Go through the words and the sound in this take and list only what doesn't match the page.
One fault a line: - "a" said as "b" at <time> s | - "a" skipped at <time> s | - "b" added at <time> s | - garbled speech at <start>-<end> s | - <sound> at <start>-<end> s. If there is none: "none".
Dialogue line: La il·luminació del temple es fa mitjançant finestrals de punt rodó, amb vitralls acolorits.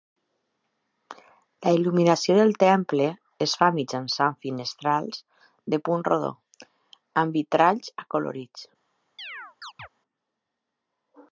- chirp at 9.2-9.9 s